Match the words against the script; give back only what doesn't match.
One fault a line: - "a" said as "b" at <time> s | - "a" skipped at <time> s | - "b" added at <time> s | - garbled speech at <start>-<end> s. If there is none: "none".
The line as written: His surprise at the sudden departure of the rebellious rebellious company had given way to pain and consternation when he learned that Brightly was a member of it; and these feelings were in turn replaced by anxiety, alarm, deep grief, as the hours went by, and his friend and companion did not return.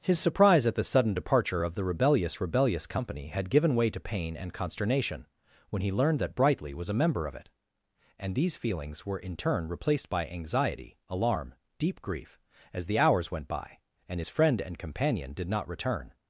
none